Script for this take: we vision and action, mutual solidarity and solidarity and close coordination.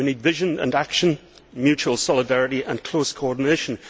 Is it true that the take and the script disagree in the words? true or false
true